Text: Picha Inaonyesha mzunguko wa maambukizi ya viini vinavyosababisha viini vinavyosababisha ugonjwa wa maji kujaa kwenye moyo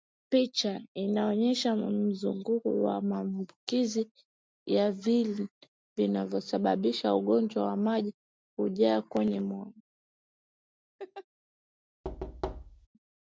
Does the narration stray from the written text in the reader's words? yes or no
yes